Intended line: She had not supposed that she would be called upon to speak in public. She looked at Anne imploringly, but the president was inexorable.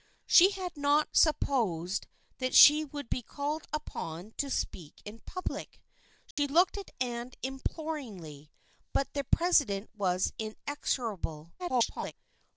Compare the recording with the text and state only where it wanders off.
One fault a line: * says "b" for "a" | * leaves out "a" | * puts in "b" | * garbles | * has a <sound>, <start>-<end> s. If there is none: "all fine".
* has a dropout, 6.3-6.4 s
* garbles